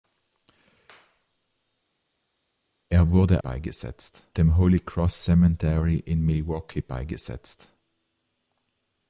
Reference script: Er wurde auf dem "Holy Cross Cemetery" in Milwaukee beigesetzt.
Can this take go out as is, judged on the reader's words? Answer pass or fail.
fail